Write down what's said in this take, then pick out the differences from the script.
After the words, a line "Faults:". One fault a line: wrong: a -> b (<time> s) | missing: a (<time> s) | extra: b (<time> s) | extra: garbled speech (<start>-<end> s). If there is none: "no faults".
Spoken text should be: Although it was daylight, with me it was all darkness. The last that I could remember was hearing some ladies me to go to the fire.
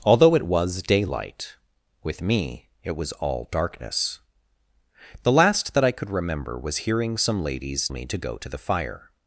Although it was daylight, with me it was all darkness. The last that I could remember was hearing some ladies me to go to the fire.
Faults:
no faults